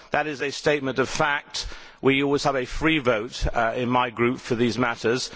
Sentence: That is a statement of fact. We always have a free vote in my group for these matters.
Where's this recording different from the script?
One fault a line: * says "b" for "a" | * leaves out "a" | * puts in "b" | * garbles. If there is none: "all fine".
all fine